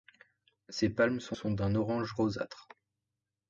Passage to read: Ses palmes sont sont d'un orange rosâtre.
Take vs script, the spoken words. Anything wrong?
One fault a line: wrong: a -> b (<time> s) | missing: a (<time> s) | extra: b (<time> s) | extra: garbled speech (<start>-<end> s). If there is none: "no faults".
no faults